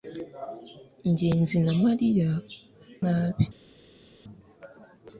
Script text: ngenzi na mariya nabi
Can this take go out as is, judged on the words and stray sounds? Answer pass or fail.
pass